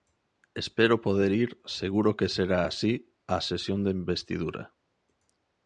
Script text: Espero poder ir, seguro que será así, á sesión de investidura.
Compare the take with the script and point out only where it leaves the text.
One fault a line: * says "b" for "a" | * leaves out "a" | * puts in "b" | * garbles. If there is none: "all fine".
all fine